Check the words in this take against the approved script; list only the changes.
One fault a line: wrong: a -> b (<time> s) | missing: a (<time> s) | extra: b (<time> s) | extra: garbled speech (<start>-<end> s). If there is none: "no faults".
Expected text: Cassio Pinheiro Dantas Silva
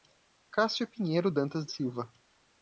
no faults